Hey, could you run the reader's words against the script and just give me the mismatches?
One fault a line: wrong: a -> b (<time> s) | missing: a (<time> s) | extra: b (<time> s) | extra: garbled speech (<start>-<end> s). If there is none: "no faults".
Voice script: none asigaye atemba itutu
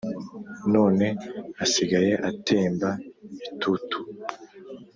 no faults